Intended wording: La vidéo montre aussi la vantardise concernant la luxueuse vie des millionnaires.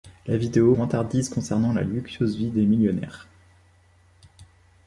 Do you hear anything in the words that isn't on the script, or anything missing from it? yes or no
yes